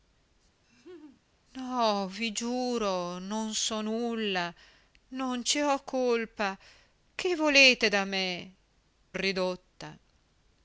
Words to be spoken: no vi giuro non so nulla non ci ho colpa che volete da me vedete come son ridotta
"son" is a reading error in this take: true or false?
true